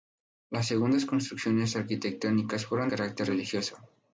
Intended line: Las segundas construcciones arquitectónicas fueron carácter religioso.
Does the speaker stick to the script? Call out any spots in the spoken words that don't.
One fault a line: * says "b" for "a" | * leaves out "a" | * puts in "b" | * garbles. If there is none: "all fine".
all fine